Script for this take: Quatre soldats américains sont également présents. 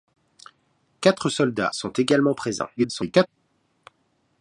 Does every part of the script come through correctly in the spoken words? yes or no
no